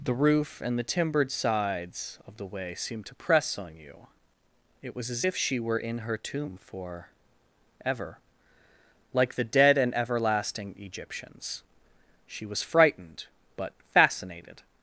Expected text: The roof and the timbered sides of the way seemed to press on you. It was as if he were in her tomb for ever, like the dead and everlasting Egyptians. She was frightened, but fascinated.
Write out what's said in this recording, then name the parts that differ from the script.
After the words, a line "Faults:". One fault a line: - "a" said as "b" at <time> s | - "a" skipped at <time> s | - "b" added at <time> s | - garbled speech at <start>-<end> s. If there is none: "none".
The roof and the timbered sides of the way seemed to press on you. It was as if she were in her tomb for ever, like the dead and everlasting Egyptians. She was frightened, but fascinated.
Faults:
- "he" said as "she" at 5.3 s